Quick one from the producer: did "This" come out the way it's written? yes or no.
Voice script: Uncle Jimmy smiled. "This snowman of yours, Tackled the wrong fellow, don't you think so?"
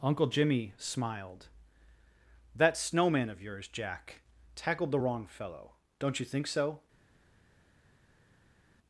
no